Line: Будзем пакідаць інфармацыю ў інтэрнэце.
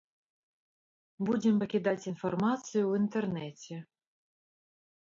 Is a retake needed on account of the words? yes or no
no